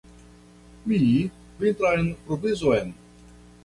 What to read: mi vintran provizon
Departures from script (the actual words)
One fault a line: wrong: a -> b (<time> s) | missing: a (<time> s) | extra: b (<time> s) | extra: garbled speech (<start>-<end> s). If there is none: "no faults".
no faults